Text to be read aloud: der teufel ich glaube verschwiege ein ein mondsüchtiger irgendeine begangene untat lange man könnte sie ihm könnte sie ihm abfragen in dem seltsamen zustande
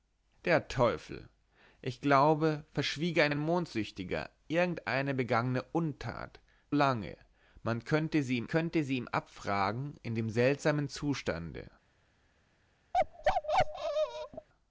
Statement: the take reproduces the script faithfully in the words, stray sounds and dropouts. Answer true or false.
false